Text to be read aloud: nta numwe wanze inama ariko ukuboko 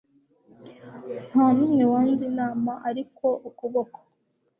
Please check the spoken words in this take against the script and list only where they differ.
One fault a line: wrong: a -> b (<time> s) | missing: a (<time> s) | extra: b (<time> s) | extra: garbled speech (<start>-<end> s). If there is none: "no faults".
no faults